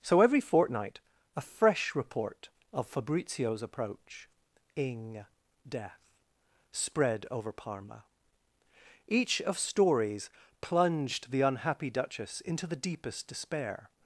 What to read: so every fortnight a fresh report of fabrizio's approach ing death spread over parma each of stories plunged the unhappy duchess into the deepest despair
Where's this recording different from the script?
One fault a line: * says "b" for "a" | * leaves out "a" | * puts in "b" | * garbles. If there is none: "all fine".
all fine